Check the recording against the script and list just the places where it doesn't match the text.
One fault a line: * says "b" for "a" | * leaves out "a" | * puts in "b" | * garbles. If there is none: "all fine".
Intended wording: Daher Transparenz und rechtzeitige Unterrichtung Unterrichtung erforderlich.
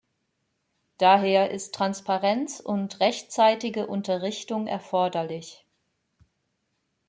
* puts in "ist"
* leaves out "Unterrichtung"